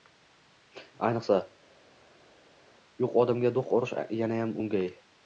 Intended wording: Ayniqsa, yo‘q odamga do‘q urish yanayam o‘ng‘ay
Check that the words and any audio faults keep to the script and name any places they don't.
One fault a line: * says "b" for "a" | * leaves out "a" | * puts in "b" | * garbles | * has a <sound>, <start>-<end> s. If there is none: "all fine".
all fine